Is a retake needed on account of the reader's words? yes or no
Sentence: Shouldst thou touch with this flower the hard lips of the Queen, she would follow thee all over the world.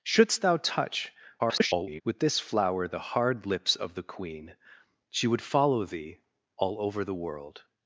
yes